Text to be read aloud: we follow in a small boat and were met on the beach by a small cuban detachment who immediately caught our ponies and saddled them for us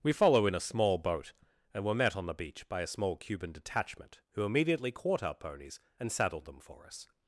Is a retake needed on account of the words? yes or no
no